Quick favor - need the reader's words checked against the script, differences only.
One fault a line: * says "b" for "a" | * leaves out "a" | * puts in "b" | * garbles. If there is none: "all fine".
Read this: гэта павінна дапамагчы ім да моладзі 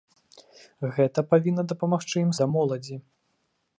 all fine